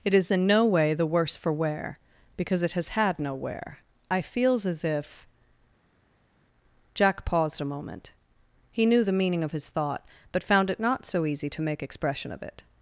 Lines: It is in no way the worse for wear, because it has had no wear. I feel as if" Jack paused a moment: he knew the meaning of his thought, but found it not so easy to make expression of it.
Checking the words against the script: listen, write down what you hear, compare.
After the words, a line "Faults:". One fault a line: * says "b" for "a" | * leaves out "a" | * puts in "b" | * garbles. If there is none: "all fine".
It is in no way the worse for wear, because it has had no wear. I feels as if" Jack paused a moment: he knew the meaning of his thought, but found it not so easy to make expression of it.
Faults:
* says "feels" for "feel"